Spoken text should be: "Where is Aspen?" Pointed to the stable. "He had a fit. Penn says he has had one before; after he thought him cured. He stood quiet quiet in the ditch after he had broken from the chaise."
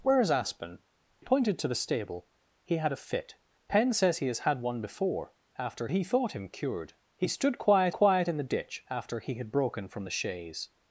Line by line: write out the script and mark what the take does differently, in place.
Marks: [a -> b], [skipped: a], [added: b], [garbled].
"Where is Aspen?" Pointed to the stable. "He had a fit. Penn says he has had one before; after he thought him cured. He stood quiet quiet in the ditch after he had broken from the chaise."